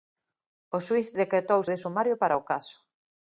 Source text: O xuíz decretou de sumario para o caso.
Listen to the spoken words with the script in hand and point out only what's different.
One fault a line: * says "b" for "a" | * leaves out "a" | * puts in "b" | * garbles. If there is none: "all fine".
all fine